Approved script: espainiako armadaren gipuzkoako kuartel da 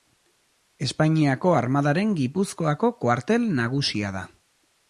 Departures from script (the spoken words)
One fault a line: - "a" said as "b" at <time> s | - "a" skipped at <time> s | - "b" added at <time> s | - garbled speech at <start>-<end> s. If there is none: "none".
- "nagusia" added at 3.6 s